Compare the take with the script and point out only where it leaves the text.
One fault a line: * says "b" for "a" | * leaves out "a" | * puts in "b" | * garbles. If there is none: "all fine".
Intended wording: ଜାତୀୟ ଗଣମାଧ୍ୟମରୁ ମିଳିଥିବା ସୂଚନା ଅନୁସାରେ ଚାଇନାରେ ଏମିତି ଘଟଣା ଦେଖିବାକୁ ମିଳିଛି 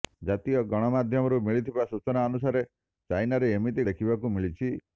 * leaves out "ଘଟଣା"